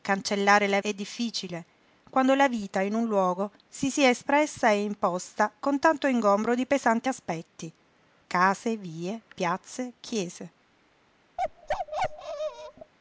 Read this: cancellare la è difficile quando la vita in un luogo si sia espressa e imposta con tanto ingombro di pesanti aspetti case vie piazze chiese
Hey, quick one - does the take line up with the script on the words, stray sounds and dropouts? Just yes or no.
no